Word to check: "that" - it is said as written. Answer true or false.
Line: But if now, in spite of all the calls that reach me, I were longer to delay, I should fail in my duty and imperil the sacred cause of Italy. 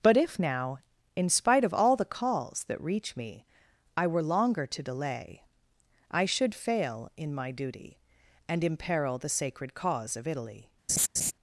true